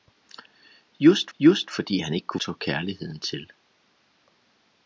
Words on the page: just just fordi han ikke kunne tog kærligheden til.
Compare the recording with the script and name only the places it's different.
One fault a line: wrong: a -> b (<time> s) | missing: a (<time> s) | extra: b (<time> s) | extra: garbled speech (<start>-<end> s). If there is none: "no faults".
no faults